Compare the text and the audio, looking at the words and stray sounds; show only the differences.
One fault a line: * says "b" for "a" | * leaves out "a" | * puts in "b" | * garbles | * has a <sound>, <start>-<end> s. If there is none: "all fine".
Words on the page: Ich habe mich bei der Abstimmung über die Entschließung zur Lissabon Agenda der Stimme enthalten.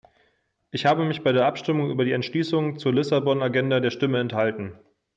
all fine